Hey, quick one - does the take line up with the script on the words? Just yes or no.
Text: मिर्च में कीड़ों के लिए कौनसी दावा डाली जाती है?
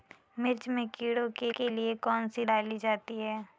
no